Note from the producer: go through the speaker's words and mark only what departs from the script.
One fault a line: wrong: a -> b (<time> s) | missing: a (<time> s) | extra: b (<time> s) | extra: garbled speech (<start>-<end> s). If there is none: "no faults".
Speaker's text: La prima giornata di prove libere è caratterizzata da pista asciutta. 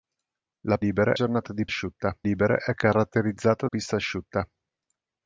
wrong: prima -> libere (0.8 s)
wrong: prove -> asciutta (1.7 s)
missing: da (3.7 s)